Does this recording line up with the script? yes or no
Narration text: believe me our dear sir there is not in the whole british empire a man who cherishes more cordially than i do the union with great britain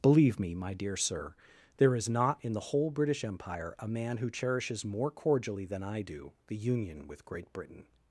no